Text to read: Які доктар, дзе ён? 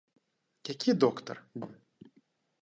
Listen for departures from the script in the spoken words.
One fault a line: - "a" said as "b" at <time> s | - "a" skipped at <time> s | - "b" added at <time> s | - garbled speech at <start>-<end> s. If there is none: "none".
- "дзе" skipped at 1.4 s